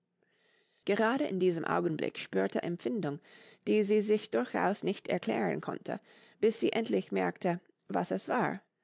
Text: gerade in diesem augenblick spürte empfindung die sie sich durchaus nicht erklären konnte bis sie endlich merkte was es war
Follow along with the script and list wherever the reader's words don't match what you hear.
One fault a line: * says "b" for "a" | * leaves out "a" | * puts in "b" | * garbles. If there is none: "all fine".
all fine